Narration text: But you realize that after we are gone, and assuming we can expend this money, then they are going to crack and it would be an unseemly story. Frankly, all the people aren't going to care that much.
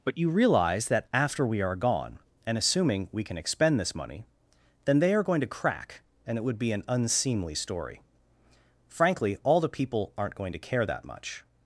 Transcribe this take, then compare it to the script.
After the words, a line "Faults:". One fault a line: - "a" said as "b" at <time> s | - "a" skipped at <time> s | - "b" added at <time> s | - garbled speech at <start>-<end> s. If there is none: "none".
But you realize that after we are gone, and assuming we can expend this money, then they are going to crack and it would be an unseemly story. Frankly, all the people aren't going to care that much.
Faults:
none